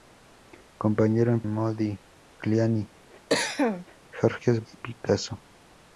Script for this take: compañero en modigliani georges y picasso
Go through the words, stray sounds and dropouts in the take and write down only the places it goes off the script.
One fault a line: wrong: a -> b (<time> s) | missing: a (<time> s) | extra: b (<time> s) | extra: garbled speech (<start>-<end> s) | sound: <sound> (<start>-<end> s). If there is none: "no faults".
sound: cough (3.3-3.9 s)